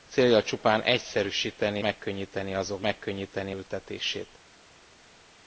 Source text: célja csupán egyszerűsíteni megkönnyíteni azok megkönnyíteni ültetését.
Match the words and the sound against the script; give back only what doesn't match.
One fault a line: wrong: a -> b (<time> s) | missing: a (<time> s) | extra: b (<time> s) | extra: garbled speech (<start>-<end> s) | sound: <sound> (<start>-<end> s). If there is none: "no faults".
no faults